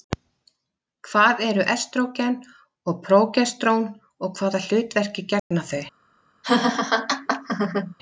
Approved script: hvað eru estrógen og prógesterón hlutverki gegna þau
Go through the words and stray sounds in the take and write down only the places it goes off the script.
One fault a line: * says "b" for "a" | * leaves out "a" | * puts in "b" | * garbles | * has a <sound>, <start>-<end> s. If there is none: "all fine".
* puts in "og hvaða"
* has a dropout, 5.4-5.5 s
* has a laugh, 6.4-8.0 s